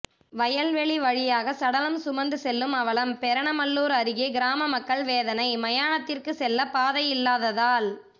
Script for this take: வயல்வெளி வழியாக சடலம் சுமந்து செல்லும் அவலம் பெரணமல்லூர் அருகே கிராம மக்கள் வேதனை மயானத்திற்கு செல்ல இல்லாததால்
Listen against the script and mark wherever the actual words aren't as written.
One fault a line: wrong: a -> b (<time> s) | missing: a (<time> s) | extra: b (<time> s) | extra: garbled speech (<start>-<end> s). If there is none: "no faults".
extra: பாதை (6.7 s)